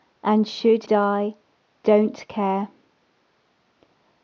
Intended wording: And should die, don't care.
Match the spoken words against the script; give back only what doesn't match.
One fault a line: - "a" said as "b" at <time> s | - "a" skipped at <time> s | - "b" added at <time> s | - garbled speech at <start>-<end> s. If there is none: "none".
none